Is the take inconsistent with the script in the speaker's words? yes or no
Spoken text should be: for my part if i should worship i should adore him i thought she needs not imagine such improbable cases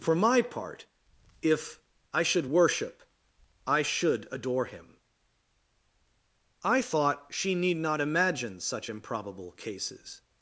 yes